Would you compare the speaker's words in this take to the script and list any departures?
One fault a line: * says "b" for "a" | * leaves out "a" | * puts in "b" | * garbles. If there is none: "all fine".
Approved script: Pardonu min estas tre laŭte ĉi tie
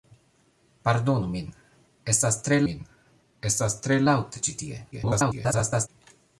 * puts in "min estas tre"
* garbles